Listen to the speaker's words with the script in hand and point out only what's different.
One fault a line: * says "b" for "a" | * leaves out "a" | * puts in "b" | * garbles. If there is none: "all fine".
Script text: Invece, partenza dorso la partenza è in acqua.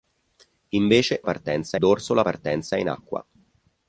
all fine